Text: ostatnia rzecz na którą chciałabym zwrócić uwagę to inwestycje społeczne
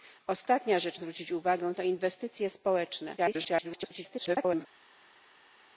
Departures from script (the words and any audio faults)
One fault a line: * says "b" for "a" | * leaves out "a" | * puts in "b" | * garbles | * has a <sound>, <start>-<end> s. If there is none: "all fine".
* leaves out "na którą chciałabym"
* garbles